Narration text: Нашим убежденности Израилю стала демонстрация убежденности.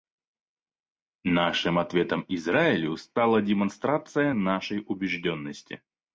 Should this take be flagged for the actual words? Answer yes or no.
yes